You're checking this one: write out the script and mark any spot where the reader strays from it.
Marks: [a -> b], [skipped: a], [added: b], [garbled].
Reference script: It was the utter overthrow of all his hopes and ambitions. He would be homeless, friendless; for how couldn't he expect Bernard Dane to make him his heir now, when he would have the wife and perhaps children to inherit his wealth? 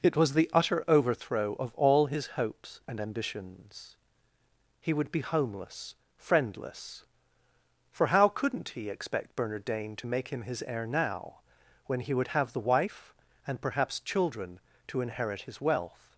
It was the utter overthrow of all his hopes and ambitions. He would be homeless, friendless; for how couldn't he expect Bernard Dane to make him his heir now, when he would have the wife and perhaps children to inherit his wealth?